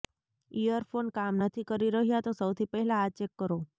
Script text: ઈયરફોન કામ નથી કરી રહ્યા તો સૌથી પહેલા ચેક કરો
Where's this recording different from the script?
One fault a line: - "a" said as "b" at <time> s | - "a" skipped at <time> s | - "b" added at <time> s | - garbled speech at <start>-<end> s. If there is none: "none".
- "આ" added at 3.0 s